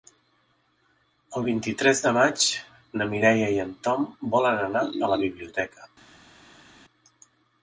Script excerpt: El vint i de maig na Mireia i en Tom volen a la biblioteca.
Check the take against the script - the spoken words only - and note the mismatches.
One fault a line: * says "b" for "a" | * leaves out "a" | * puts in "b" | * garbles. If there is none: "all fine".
* puts in "tres"
* puts in "anar"